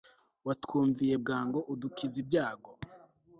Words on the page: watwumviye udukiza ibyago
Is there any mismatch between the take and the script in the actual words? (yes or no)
yes